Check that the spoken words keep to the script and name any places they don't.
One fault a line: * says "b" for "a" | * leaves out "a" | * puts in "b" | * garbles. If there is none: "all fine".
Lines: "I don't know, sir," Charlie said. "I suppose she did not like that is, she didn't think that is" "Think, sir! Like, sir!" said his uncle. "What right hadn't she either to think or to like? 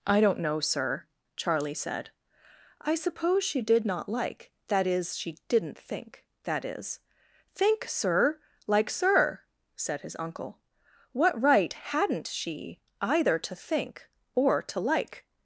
all fine